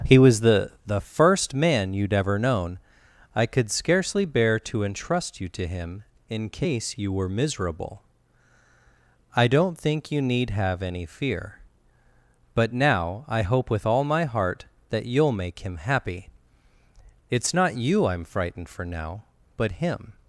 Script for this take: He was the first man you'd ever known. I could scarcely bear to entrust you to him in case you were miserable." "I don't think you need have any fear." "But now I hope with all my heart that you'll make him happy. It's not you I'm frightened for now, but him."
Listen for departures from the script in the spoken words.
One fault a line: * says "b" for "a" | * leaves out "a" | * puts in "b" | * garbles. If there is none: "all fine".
* puts in "the"